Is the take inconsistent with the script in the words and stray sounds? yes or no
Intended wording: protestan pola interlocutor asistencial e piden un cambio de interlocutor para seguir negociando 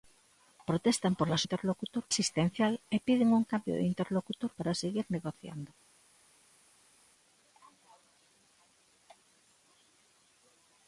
no